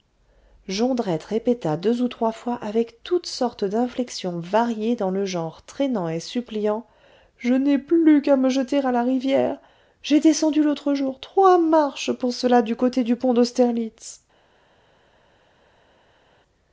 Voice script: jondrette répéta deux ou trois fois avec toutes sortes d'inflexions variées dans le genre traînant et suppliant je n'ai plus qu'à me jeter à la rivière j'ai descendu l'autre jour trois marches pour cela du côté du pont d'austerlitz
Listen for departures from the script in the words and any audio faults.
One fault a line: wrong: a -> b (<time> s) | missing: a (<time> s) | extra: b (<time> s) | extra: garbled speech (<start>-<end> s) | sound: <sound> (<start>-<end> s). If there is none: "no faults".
no faults